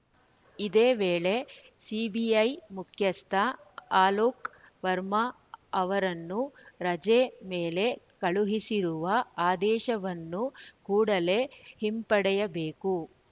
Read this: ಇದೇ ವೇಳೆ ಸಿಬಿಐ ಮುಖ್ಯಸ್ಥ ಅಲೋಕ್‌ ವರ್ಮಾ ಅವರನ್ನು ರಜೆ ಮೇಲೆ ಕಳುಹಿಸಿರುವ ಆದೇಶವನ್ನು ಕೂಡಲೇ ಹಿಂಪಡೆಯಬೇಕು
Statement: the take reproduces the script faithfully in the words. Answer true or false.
true